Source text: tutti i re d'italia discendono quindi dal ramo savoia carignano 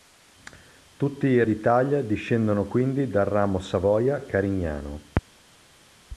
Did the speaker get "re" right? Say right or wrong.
wrong